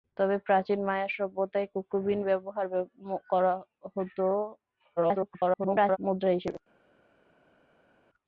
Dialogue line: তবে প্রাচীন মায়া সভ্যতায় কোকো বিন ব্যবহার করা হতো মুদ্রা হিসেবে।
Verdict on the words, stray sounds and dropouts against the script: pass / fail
fail